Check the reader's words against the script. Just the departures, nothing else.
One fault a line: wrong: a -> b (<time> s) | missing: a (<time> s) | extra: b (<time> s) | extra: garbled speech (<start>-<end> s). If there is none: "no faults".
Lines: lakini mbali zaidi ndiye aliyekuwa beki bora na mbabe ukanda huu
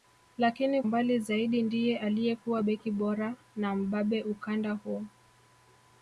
no faults